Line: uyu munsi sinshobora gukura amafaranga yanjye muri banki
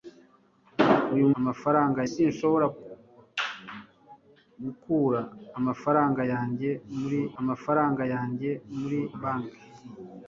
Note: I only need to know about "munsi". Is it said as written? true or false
false